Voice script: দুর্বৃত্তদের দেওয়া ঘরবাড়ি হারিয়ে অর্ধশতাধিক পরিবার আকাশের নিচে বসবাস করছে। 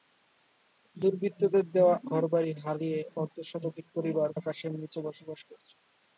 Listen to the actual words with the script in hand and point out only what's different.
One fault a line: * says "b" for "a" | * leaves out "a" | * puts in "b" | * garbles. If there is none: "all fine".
all fine